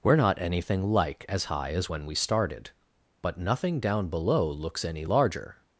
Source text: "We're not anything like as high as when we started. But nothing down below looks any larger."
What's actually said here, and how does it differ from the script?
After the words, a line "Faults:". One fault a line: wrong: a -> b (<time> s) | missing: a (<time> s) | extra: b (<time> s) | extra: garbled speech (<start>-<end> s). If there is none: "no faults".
"We're not anything like as high as when we started. But nothing down below looks any larger."
Faults:
no faults